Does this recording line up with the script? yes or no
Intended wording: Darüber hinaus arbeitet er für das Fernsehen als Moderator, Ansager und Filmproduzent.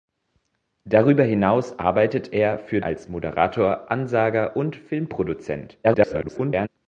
no